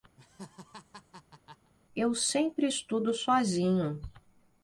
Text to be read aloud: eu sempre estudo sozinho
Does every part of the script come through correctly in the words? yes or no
yes